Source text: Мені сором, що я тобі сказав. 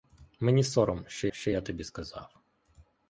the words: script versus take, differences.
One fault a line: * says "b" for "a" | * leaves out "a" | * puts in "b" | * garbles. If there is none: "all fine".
* puts in "що"